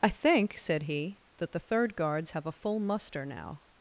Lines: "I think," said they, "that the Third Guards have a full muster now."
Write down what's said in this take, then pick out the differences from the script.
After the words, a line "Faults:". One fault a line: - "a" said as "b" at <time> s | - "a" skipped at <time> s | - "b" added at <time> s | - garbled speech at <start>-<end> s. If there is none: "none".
"I think," said he, "that the Third Guards have a full muster now."
Faults:
- "they" said as "he" at 0.8 s